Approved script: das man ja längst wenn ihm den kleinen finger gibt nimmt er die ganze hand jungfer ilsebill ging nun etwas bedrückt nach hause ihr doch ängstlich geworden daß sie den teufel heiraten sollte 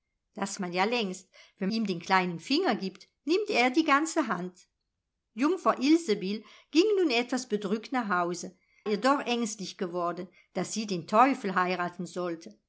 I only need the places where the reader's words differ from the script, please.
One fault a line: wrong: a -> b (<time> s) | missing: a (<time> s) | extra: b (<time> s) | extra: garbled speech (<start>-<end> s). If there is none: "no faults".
no faults